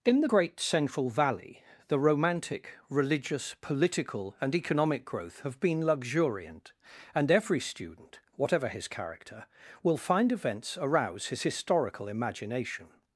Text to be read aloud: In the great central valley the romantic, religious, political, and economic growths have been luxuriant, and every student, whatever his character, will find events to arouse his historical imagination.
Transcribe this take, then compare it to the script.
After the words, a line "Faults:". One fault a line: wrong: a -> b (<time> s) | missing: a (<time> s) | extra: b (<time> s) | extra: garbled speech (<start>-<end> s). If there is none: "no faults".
In the great central valley the romantic, religious, political, and economic growth have been luxuriant, and every student, whatever his character, will find events arouse his historical imagination.
Faults:
wrong: growths -> growth (5.1 s)
missing: to (10.8 s)